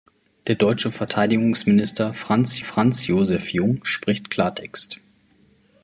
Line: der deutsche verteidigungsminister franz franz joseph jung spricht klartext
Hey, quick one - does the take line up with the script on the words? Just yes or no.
yes